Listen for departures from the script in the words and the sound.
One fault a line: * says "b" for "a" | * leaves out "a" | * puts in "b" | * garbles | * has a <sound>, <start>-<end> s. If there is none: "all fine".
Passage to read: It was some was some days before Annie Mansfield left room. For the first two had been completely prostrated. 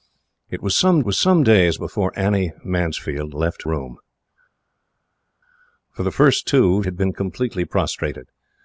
all fine